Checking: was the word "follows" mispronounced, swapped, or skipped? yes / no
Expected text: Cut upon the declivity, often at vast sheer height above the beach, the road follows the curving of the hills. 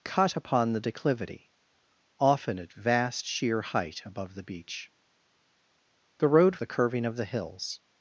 yes